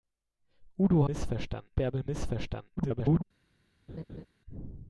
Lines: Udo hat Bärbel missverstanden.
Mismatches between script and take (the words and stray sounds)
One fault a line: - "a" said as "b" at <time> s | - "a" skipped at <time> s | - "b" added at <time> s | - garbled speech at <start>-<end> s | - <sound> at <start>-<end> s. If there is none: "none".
- "hat" said as "missverstanden" at 1.1 s
- garbled speech at 2.8-3.2 s
- laugh at 3.9-4.3 s